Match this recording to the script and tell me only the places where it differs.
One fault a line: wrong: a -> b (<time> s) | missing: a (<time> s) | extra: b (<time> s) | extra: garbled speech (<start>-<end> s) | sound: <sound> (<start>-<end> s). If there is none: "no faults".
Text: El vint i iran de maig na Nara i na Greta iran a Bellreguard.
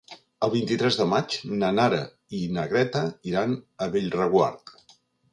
wrong: iran -> tres (0.8 s)